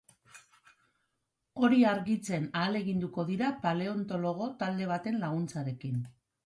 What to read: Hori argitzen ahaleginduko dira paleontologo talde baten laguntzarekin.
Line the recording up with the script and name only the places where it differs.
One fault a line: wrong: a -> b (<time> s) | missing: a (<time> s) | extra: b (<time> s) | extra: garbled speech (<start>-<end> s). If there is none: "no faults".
no faults